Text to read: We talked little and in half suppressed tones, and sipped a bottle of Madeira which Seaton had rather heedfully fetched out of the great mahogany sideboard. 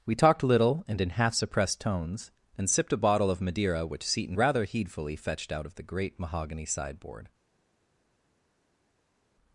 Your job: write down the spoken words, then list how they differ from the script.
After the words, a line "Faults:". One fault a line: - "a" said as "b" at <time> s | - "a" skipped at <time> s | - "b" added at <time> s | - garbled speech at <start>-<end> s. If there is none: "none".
We talked little and in half suppressed tones, and sipped a bottle of Madeira which Seaton rather heedfully fetched out of the great mahogany sideboard.
Faults:
- "had" skipped at 4.4 s